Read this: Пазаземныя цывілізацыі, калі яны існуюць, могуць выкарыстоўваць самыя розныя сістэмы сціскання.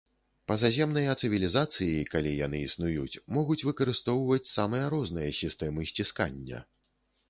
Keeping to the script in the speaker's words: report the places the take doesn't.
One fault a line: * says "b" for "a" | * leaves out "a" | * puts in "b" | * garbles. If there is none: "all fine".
all fine